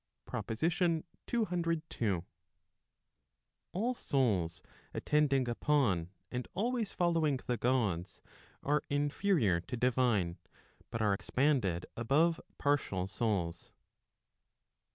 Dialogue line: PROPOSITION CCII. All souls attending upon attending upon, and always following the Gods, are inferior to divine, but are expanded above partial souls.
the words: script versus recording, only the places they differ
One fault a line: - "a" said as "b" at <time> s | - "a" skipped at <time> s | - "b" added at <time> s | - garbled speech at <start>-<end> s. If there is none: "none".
- "attending upon" skipped at 6.1 s